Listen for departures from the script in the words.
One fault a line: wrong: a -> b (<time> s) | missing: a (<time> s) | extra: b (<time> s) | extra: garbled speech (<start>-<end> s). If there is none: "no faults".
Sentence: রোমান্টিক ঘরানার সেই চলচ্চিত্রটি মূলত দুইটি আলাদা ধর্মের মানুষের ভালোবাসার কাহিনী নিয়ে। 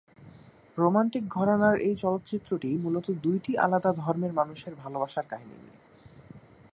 wrong: সেই -> এই (1.8 s)